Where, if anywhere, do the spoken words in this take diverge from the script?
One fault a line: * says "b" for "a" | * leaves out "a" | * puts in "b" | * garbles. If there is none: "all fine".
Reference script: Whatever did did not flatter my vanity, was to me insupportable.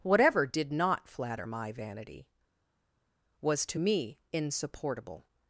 * leaves out "did"